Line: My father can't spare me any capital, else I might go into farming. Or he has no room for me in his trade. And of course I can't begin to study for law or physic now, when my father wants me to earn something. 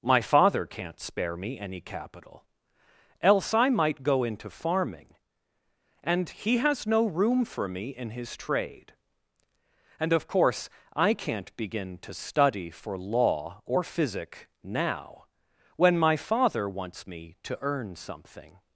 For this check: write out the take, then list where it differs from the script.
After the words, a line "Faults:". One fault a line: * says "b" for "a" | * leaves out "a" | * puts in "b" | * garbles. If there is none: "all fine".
My father can't spare me any capital, else I might go into farming. And he has no room for me in his trade. And of course I can't begin to study for law or physic now, when my father wants me to earn something.
Faults:
* says "And" for "Or"